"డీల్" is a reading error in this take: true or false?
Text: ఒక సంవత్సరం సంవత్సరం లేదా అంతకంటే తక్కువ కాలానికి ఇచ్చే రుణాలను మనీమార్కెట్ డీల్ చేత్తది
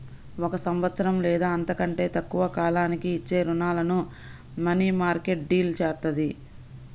false